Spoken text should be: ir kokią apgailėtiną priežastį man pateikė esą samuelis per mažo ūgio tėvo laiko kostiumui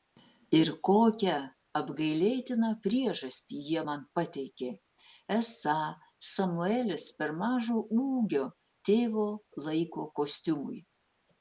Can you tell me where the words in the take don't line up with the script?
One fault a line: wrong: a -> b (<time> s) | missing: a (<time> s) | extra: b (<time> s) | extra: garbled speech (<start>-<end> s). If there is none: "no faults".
extra: jie (3.7 s)